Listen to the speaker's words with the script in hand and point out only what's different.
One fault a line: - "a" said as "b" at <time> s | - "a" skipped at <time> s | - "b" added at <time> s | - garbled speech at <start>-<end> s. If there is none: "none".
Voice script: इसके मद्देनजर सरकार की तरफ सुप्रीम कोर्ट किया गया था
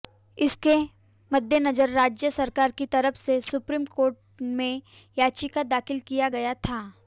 - "राज्य" added at 1.9 s
- "से" added at 3.2 s
- "में याचिका दाखिल" added at 4.4 s